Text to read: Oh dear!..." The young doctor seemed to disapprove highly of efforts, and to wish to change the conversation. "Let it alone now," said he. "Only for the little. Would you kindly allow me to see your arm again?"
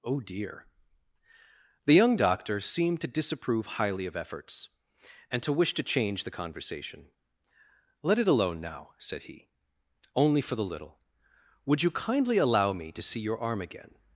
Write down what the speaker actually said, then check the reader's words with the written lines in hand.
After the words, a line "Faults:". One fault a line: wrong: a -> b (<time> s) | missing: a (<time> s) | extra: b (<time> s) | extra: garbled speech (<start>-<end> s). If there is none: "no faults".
Oh dear!..." The young doctor seemed to disapprove highly of efforts, and to wish to change the conversation. "Let it alone now," said he. "Only for the little. Would you kindly allow me to see your arm again?"
Faults:
no faults